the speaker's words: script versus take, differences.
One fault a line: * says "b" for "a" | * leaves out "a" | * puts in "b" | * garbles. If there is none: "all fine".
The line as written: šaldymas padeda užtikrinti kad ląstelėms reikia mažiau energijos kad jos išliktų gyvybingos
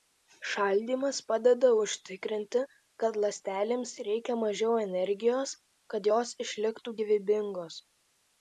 all fine